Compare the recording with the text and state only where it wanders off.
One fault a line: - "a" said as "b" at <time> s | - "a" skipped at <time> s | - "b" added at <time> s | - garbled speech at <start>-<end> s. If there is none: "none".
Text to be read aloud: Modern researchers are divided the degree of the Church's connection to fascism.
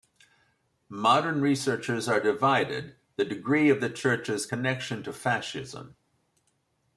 none